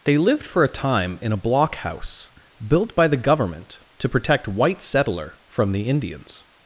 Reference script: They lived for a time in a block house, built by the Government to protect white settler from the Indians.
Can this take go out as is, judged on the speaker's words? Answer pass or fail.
pass